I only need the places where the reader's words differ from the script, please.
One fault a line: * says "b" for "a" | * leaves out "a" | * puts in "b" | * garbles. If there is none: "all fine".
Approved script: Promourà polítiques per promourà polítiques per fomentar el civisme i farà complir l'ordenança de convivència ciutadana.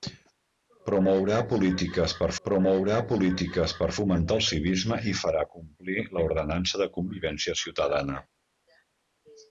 all fine